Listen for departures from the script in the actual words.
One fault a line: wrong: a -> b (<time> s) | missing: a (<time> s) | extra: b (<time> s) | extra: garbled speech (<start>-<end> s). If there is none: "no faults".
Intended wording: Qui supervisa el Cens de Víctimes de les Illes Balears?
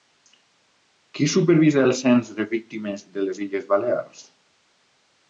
no faults